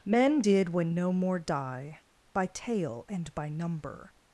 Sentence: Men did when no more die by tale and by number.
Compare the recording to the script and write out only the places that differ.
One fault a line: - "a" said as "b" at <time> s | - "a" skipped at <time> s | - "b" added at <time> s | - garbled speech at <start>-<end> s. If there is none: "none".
none